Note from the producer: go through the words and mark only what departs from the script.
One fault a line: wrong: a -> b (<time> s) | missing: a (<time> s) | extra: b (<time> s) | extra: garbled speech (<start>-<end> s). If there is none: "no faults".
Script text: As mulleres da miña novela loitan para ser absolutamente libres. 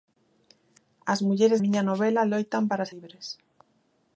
missing: da (1.6 s)
missing: ser absolutamente (2.9 s)